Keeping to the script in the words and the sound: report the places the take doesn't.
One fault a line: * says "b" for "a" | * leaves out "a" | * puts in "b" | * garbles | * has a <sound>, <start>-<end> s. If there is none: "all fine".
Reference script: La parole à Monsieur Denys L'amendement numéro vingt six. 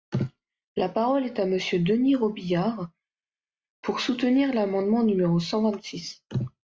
* puts in "est"
* puts in "Robiliard pour soutenir"
* puts in "cent"